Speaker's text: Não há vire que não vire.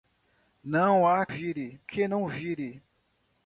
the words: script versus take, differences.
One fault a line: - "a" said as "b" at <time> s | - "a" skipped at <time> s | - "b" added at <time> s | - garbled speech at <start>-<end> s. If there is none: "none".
none